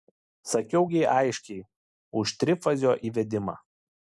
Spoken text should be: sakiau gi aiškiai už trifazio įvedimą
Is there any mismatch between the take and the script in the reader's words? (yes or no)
no